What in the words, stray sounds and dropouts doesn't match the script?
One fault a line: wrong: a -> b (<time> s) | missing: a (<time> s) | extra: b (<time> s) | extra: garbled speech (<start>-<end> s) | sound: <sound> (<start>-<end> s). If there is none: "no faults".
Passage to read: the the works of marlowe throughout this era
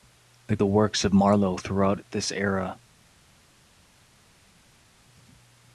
no faults